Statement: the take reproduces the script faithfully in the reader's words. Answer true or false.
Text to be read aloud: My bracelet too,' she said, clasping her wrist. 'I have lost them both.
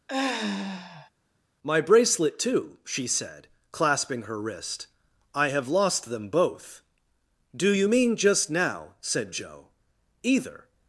false